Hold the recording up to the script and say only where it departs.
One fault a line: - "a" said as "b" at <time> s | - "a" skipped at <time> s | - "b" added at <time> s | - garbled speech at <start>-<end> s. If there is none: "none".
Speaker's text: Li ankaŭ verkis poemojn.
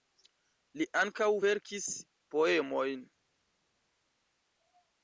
none